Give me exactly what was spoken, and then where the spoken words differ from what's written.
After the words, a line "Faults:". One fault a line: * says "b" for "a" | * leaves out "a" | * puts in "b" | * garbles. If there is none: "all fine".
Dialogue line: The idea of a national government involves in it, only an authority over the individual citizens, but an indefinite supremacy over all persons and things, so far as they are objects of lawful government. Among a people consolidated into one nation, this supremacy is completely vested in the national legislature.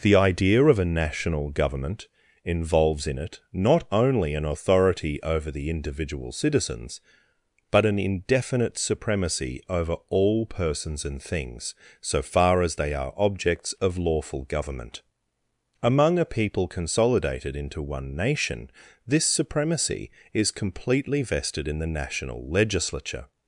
The idea of a national government involves in it, not only an authority over the individual citizens, but an indefinite supremacy over all persons and things, so far as they are objects of lawful government. Among a people consolidated into one nation, this supremacy is completely vested in the national legislature.
Faults:
* puts in "not"